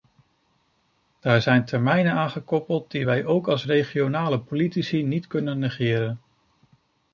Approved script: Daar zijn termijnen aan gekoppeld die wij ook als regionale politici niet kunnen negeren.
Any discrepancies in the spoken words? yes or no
no